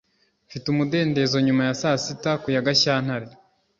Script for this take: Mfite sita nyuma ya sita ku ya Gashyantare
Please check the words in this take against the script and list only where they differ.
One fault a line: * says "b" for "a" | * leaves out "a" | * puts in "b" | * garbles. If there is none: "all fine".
* says "umudendezo" for "sita"
* puts in "saa"